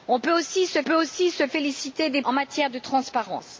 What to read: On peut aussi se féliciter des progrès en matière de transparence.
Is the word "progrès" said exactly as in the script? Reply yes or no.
no